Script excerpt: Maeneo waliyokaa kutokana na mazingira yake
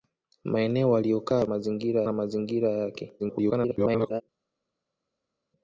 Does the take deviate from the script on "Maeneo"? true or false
false